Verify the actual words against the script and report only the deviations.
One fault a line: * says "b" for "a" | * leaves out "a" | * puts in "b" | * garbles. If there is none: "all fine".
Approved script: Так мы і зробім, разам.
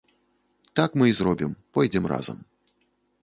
* puts in "пойдзем"